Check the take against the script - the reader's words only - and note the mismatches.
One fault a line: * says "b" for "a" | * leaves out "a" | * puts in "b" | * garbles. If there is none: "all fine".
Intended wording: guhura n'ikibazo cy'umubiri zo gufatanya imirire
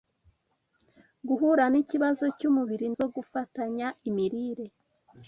all fine